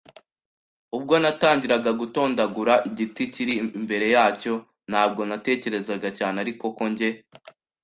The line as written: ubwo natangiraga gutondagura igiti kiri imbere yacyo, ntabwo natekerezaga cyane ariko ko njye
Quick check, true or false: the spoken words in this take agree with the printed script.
true